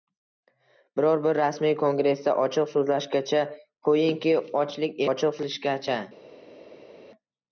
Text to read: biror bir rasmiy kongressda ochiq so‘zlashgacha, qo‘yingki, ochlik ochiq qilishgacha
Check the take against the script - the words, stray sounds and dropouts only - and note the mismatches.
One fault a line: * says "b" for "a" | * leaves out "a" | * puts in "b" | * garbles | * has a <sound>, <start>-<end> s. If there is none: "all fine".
all fine